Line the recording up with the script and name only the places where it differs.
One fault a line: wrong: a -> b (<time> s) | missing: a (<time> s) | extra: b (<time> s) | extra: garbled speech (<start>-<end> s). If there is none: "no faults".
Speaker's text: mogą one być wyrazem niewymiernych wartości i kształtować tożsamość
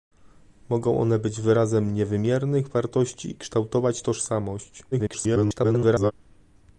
extra: garbled speech (4.9-6.1 s)